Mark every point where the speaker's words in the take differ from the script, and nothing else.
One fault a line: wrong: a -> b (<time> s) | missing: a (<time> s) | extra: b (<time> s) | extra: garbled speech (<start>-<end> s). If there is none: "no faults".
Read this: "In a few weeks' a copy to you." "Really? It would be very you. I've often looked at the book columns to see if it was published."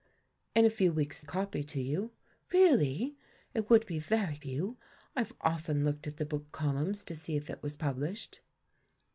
no faults